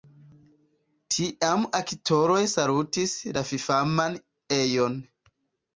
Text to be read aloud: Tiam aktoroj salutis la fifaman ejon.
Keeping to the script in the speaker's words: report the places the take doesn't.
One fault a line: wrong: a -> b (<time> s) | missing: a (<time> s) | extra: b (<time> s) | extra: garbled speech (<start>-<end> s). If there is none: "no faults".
no faults